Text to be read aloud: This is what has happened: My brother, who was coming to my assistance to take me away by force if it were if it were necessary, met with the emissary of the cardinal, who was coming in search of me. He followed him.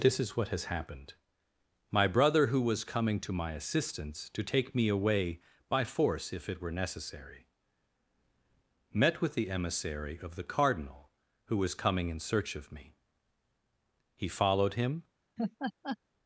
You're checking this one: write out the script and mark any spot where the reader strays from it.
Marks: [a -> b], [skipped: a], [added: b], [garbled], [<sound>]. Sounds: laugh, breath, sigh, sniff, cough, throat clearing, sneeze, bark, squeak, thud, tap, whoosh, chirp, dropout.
This is what has happened: My brother, who was coming to my assistance to take me away by force if it were [skipped: if it were] necessary, met with the emissary of the cardinal, who was coming in search of me. He followed him. [laugh]